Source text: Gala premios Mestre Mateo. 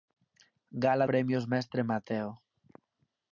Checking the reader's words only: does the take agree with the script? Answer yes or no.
yes